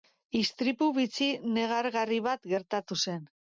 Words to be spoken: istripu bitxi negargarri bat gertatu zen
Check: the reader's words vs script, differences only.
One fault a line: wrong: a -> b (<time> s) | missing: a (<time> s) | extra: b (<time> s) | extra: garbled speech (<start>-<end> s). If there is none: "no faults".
no faults